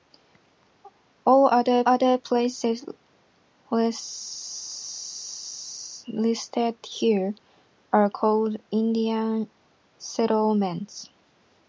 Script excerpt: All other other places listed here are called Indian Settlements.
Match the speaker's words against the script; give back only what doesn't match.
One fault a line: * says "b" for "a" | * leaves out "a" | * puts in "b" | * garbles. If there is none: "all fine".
all fine